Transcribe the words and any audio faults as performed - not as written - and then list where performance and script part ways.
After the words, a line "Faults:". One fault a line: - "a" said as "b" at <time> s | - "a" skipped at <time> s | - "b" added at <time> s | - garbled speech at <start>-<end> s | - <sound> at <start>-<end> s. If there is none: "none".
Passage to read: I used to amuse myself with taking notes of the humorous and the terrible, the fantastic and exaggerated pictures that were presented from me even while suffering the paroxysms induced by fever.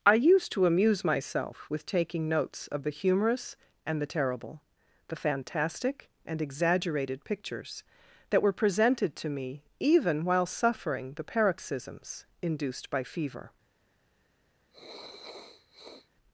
I used to amuse myself with taking notes of the humorous and the terrible, the fantastic and exaggerated pictures that were presented to me even while suffering the paroxysms induced by fever.
Faults:
- "from" said as "to" at 9.2 s
- sniff at 14.7-16.1 s